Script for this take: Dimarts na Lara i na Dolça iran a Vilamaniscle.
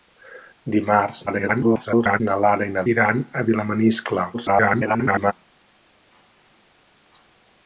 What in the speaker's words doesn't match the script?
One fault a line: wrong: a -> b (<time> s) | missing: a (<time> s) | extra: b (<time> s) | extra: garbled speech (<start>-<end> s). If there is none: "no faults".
extra: garbled speech (1.3-2.2 s)
missing: Dolça (2.8 s)
extra: garbled speech (4.3-5.3 s)